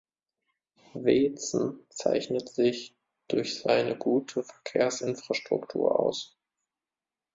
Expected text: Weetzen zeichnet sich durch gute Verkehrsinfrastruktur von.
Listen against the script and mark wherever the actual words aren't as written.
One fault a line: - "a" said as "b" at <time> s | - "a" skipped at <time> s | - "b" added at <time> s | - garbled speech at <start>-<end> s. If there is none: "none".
- "seine" added at 3.6 s
- "von" said as "aus" at 6.0 s